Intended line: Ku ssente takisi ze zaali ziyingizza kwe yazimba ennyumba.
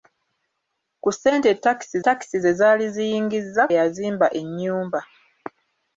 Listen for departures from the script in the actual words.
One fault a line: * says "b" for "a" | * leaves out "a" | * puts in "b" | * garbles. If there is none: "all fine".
* puts in "takisi"
* leaves out "kwe"